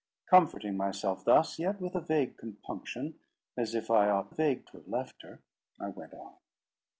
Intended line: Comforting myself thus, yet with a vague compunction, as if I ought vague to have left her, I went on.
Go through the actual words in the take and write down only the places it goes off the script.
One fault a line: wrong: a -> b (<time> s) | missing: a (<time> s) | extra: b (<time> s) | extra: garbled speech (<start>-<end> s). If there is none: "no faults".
no faults